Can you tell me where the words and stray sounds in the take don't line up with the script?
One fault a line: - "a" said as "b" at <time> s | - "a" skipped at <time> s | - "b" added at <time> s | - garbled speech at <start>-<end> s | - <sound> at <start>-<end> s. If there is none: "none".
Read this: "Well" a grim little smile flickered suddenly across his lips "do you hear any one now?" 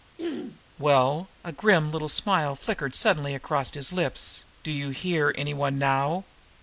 - throat clearing at 0.2-0.6 s